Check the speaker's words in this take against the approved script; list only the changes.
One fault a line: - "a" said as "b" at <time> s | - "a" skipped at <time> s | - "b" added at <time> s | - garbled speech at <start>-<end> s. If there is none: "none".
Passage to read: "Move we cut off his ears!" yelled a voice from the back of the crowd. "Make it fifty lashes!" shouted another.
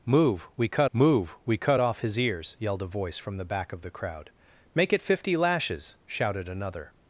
- "move we cut" added at 0.9 s